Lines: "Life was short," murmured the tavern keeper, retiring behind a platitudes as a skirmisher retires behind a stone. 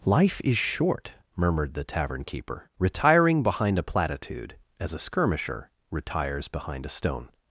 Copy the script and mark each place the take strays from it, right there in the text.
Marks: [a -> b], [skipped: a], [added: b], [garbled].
"Life [was -> is] short," murmured the tavern keeper, retiring behind a [platitudes -> platitude] as a skirmisher retires behind a stone.